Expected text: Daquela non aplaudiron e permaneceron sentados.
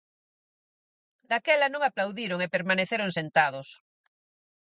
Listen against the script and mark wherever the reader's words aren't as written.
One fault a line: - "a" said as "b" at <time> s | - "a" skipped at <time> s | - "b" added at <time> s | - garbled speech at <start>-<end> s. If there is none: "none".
none